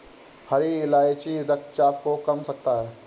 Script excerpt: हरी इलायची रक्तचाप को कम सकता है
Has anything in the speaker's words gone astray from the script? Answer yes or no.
no